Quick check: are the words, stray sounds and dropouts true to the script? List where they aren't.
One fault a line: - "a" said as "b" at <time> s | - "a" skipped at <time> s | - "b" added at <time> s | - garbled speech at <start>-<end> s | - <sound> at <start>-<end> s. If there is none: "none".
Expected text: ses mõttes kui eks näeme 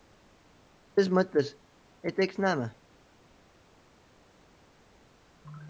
- "kui" said as "et" at 2.0 s